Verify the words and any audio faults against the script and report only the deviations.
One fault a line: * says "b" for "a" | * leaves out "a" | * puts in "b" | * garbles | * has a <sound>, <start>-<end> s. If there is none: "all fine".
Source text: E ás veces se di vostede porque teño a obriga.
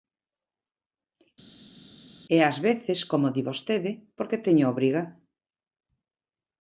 * says "como" for "se"